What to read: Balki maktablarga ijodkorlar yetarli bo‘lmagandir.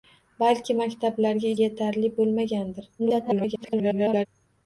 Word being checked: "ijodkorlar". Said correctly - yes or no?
no